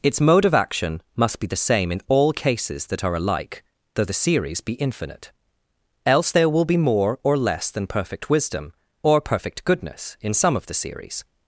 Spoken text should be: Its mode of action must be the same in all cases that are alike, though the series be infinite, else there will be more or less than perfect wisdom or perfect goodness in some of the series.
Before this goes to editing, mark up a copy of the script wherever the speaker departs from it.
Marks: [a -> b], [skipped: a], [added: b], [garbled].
Its mode of action must be the same in all cases that are alike, though the series be infinite, else there will be more or less than perfect wisdom or perfect goodness in some of the series.